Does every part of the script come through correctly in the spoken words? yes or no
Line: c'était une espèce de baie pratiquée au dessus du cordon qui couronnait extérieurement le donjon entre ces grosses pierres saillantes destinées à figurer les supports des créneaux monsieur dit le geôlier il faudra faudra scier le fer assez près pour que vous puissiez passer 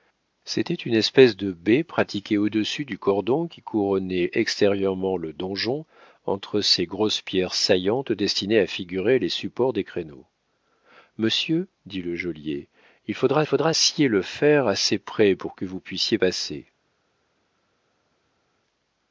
yes